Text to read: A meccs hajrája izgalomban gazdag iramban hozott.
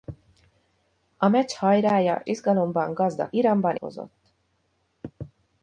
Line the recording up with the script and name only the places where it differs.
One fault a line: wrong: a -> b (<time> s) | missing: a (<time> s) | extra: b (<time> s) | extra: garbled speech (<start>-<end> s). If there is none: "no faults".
no faults